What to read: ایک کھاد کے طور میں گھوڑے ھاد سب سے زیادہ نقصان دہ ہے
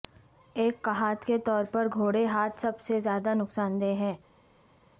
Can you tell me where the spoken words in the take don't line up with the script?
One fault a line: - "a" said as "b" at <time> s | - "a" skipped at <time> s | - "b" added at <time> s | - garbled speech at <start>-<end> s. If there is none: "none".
- "میں" said as "پر" at 1.7 s